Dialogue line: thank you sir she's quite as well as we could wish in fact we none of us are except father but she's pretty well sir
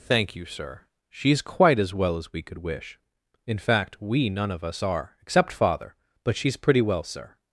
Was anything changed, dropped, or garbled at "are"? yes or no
no